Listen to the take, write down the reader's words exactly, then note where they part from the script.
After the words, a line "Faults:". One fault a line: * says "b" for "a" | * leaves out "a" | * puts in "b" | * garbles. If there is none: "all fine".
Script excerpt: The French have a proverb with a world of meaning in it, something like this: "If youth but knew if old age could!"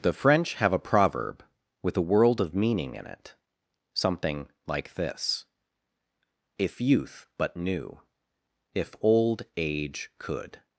The French have a proverb with a world of meaning in it, something like this: "If youth but knew if old age could!"
Faults:
all fine